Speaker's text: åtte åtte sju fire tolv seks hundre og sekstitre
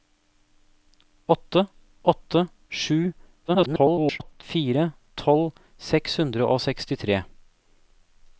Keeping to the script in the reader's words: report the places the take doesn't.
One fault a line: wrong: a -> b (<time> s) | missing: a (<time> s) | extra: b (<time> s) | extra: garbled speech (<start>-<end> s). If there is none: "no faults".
extra: garbled speech (3.5-4.4 s)